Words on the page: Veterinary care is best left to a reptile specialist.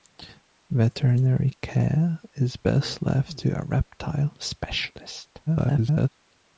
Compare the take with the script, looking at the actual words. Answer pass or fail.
fail